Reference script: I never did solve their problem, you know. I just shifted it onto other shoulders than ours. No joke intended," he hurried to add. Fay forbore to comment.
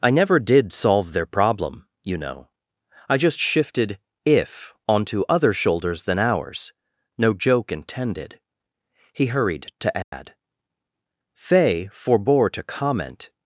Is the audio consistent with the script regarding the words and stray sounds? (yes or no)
no